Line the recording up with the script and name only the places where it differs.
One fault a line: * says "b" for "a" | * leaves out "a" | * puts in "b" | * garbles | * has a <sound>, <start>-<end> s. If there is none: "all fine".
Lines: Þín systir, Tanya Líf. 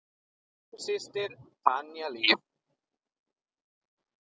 all fine